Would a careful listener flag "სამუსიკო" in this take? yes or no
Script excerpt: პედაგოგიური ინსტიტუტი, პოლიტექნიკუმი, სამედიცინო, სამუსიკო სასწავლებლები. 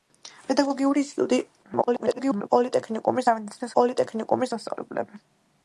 yes